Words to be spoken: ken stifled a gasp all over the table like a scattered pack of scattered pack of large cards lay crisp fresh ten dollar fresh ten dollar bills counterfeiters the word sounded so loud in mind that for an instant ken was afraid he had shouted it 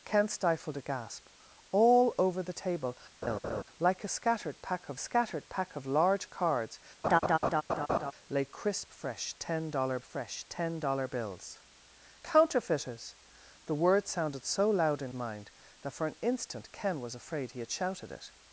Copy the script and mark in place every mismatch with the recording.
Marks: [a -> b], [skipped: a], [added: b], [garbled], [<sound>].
ken stifled a gasp all over the table [laugh] like a scattered pack of scattered pack of large cards [laugh] lay crisp fresh ten dollar fresh ten dollar bills counterfeiters the word sounded so loud in mind that for an instant ken was afraid he had shouted it